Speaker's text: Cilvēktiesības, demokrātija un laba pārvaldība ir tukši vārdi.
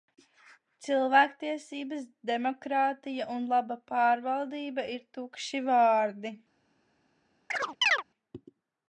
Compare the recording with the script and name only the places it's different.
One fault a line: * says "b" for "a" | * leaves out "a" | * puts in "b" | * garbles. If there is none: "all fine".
all fine